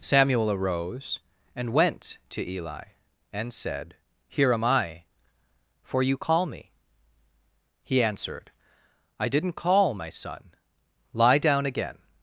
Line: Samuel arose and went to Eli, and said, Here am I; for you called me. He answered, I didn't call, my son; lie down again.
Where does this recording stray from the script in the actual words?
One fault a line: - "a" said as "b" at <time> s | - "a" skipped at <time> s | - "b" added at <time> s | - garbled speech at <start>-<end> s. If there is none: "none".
- "called" said as "call" at 6.2 s